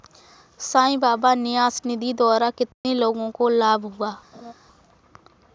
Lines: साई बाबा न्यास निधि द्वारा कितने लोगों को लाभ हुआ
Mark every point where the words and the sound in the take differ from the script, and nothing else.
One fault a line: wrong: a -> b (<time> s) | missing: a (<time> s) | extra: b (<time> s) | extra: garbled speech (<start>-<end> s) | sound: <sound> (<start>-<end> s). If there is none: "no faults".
sound: dropout (2.7-2.8 s)
sound: laugh (4.3-4.5 s)